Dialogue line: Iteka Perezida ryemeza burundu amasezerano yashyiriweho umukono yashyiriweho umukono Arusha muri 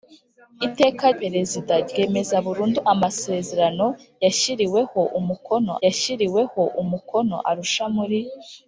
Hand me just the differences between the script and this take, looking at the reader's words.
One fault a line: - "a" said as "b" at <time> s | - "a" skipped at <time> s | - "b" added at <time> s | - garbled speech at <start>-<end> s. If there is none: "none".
none